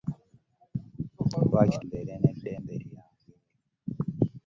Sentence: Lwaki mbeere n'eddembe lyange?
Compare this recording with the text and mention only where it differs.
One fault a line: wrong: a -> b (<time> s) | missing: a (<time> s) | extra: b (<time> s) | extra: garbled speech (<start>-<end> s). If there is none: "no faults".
no faults